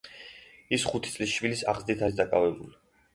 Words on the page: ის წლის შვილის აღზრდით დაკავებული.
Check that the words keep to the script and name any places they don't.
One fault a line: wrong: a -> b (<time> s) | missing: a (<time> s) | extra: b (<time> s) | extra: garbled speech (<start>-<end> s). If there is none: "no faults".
extra: ხუთი (0.9 s)
extra: არის (2.1 s)